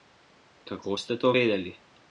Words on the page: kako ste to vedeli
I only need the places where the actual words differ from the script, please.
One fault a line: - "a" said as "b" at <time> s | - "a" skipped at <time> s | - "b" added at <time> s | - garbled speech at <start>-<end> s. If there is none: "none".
none